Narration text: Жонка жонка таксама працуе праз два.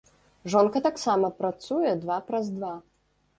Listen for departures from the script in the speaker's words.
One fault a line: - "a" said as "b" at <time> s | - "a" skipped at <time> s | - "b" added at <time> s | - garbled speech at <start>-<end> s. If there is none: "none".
- "жонка" skipped at 0.8 s
- "два" added at 2.1 s